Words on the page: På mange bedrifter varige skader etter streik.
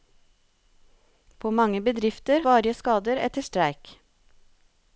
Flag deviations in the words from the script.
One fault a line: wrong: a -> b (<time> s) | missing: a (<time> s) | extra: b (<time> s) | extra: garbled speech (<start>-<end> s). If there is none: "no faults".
no faults